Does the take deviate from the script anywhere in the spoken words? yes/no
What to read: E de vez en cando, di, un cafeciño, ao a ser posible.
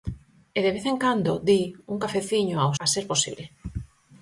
no